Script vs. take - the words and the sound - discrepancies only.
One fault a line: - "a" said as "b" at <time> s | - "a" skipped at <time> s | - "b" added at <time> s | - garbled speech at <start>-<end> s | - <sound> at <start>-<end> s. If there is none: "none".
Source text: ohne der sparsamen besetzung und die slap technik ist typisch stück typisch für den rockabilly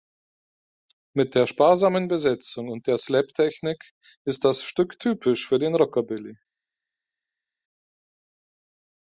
- "ohne" said as "mit" at 1.1 s
- "die" said as "der" at 2.9 s
- "typisch" said as "das" at 4.5 s